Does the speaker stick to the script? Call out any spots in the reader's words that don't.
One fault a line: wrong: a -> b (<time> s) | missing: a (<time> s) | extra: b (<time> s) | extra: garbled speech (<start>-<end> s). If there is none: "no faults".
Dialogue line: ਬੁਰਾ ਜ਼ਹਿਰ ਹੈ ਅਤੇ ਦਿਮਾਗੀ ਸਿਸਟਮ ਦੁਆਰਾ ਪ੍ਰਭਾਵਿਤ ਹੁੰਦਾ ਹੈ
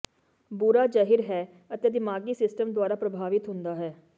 no faults